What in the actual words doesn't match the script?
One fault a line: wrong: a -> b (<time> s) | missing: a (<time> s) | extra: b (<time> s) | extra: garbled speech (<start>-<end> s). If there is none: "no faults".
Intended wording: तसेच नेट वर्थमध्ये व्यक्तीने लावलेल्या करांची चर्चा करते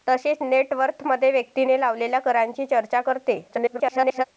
extra: garbled speech (3.5-4.2 s)